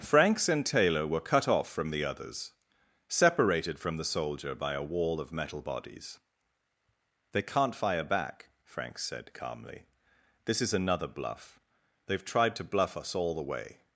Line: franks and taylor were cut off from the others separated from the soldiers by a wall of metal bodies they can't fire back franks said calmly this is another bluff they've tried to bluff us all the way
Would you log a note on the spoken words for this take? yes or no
yes